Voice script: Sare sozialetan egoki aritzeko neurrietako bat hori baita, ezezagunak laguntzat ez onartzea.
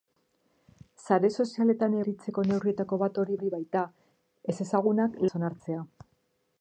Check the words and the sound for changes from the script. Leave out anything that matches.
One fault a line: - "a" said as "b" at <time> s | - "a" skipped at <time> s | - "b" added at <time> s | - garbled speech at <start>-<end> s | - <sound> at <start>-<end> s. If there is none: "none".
- "egoki" skipped at 2.0 s
- "hori" added at 3.4 s
- "laguntzat" skipped at 5.2 s